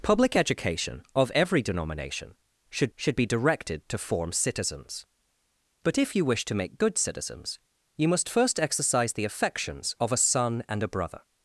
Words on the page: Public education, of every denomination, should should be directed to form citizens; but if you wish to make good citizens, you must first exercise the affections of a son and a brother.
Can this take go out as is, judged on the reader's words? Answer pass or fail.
pass